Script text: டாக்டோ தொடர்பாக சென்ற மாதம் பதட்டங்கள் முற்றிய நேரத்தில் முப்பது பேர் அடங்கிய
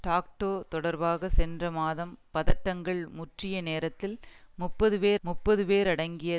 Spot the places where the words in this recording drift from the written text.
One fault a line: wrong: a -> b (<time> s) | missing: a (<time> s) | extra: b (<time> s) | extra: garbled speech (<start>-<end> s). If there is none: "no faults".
extra: முப்பது பேர் (5.2 s)